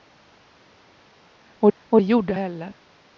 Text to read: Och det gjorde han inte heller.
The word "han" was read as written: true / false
false